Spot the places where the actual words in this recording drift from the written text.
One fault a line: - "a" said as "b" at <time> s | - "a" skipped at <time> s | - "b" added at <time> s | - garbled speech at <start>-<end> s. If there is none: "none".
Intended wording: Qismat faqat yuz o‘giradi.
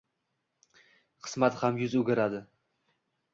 - "faqat" said as "ham" at 1.6 s